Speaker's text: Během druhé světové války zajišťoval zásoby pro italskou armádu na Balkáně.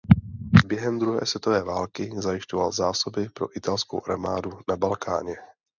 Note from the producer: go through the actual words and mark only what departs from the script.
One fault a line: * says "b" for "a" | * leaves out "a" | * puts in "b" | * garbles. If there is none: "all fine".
all fine